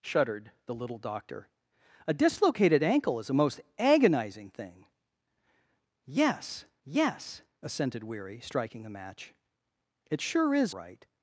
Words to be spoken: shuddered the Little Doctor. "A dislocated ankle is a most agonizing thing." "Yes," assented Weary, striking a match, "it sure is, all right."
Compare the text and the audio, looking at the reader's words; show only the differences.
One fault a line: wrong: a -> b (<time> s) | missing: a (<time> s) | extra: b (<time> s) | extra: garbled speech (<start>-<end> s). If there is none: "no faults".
extra: yes (6.8 s)
missing: all (10.7 s)